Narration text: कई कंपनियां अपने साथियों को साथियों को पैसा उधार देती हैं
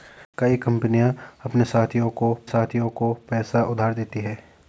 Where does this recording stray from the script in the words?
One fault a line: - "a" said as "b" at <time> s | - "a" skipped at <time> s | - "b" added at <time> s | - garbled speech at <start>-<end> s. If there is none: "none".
none